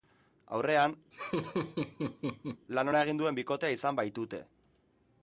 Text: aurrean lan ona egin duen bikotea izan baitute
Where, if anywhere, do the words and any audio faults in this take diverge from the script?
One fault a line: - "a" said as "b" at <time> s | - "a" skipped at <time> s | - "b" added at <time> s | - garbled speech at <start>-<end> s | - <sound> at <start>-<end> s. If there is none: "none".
- laugh at 1.1-2.7 s